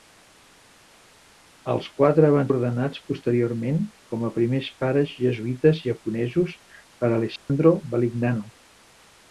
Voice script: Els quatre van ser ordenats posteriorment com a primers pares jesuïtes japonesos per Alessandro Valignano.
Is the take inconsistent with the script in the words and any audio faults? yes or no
yes